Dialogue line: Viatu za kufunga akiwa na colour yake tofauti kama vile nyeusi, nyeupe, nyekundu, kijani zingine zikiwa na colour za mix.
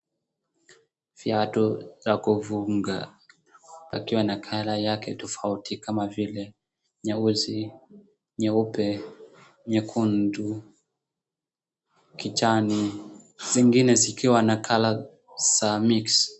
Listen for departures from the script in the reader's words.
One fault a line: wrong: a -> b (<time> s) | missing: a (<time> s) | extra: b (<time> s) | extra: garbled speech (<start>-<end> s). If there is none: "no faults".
no faults